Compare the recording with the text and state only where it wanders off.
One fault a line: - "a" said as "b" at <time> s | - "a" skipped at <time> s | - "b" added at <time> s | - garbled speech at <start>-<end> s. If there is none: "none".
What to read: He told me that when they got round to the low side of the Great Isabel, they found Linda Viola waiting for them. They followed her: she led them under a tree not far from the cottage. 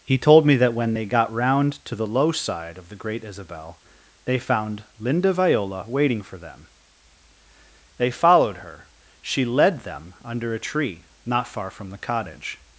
none